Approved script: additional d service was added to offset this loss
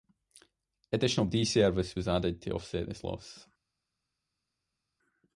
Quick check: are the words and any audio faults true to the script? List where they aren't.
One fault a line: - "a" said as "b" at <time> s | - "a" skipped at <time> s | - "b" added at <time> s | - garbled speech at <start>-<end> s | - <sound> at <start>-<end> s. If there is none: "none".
none